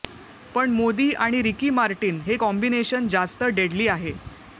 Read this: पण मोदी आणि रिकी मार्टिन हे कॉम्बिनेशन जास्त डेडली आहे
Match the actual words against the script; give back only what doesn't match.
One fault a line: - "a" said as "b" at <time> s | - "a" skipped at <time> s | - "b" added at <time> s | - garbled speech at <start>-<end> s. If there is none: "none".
none